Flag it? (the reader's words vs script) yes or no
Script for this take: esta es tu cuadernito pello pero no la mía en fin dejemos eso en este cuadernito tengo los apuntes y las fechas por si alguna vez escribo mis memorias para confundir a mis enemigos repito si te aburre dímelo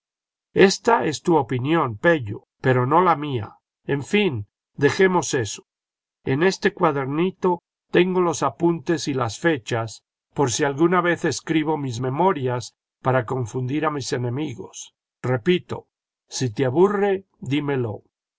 yes